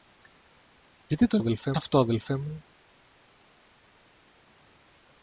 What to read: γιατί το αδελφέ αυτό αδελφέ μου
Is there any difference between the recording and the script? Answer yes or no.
no